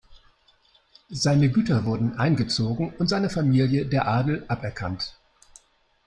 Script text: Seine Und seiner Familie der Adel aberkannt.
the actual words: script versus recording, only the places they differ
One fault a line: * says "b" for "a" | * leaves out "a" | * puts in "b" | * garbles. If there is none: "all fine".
* puts in "Güter wurden eingezogen"